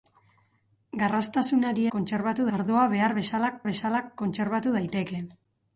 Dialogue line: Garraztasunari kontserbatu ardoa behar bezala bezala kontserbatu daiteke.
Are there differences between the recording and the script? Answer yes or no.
no